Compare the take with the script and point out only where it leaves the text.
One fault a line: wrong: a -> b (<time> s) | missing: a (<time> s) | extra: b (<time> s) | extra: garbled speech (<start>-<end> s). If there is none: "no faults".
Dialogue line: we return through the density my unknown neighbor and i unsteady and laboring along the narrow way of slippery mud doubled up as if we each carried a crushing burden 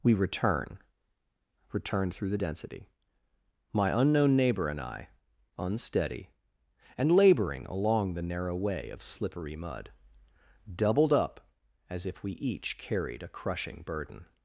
extra: return (1.7 s)